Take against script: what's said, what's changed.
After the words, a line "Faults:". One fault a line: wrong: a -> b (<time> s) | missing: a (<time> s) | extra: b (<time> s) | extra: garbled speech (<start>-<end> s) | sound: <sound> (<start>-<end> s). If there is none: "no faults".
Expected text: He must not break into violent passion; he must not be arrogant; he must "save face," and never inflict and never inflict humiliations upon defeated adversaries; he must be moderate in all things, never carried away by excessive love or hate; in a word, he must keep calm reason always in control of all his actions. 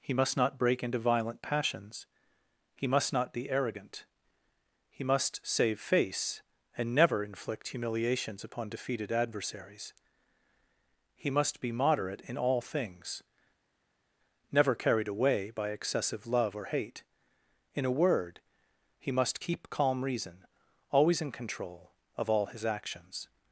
He must not break into violent passions; he must not be arrogant; he must "save face," and never inflict humiliations upon defeated adversaries; he must be moderate in all things, never carried away by excessive love or hate; in a word, he must keep calm reason always in control of all his actions.
Faults:
wrong: passion -> passions (1.4 s)
missing: and never inflict (7.7 s)